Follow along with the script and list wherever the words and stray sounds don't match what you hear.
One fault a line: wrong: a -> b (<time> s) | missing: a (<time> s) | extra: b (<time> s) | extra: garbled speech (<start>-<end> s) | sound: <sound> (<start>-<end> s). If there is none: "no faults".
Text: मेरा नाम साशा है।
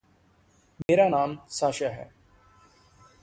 sound: dropout (0.8-0.9 s)